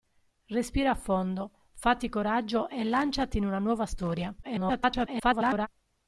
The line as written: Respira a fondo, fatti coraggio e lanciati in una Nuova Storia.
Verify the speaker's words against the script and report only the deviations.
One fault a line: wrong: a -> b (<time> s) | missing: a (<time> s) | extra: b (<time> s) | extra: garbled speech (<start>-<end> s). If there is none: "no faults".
extra: garbled speech (4.4-5.7 s)